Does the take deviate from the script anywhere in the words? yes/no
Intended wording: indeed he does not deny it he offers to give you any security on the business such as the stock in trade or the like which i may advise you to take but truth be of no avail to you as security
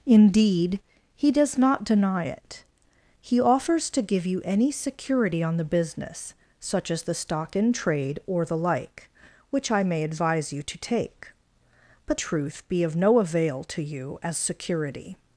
no